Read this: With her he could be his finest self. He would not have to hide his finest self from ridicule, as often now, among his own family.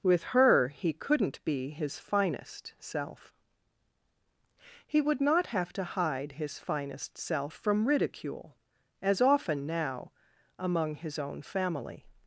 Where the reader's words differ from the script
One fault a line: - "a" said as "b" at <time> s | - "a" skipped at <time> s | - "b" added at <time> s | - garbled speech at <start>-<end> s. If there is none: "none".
- "could" said as "couldn't" at 0.9 s